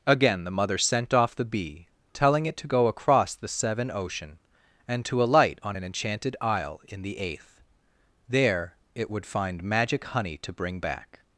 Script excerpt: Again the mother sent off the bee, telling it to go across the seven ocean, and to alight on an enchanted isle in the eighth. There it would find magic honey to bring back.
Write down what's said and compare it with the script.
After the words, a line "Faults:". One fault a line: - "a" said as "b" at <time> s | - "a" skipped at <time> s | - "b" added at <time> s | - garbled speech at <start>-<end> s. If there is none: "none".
Again the mother sent off the bee, telling it to go across the seven ocean, and to alight on an enchanted isle in the eighth. There it would find magic honey to bring back.
Faults:
none